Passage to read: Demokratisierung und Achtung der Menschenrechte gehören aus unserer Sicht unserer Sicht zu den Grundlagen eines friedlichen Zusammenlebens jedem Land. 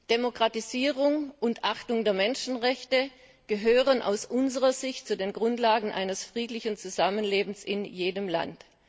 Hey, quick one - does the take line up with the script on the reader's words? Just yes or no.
no